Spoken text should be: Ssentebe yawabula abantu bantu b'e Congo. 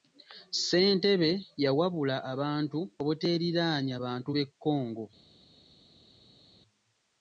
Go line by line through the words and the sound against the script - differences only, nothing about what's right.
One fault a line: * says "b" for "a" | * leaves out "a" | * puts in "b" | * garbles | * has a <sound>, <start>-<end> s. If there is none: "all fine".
* puts in "obuteeriraanya"